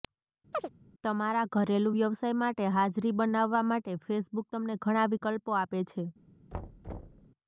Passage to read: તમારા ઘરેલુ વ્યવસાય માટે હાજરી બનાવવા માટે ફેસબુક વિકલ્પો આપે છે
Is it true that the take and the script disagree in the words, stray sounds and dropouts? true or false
true